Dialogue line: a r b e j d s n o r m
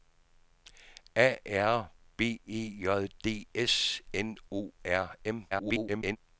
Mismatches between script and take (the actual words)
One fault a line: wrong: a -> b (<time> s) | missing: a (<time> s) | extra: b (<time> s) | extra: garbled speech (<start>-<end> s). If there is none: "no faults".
extra: garbled speech (5.5-6.2 s)